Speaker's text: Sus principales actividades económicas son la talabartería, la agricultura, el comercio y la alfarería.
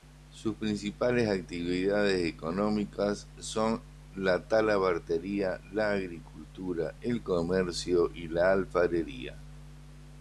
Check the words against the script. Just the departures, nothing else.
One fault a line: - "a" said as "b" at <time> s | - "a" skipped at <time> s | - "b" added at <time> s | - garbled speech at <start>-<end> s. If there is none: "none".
none